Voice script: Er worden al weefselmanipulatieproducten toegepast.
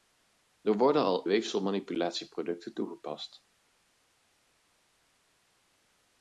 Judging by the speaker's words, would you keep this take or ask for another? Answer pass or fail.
pass